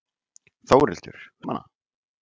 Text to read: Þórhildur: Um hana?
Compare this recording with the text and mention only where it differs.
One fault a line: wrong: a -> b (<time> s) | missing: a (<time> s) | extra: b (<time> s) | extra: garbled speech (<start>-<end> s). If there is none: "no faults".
no faults